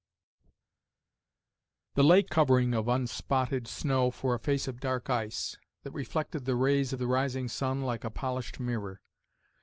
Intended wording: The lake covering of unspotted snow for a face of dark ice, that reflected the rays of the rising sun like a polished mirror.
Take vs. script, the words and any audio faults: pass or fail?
pass